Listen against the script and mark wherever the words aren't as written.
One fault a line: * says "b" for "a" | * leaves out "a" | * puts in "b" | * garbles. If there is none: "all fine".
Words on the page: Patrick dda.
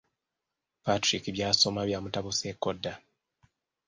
* puts in "by'asoma byamutabuseeko"